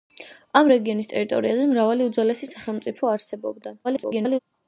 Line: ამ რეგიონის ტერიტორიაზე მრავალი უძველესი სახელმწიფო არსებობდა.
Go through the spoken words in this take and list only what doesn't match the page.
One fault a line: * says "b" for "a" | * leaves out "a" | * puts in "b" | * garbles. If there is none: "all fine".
* garbles